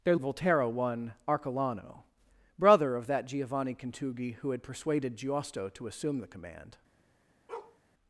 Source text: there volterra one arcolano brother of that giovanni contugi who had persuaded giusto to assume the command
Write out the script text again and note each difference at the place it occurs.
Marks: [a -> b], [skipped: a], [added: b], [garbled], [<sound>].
there volterra one arcolano brother of that giovanni contugi who had persuaded giusto to assume the command [bark]